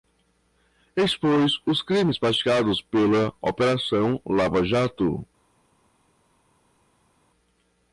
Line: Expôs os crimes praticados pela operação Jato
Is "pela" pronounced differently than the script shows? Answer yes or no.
no